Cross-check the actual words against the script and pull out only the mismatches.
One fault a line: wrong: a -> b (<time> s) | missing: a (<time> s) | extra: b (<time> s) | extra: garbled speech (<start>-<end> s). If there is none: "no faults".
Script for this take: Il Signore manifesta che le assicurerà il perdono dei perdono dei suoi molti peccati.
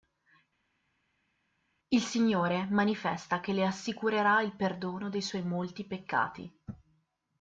missing: perdono dei (5.2 s)